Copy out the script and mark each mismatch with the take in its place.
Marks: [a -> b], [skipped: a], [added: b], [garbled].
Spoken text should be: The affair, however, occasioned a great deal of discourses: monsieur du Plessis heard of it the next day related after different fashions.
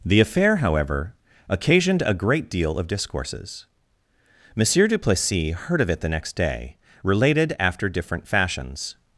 The affair, however, occasioned a great deal of discourses: monsieur du Plessis heard of it the next day related after different fashions.